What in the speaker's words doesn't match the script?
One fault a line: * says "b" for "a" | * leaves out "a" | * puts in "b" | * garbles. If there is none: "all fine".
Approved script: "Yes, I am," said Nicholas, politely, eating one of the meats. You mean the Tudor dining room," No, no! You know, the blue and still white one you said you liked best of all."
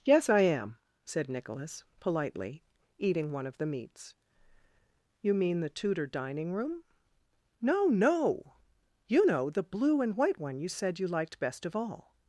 * leaves out "still"